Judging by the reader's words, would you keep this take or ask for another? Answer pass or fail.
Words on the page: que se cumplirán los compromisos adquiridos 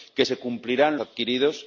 fail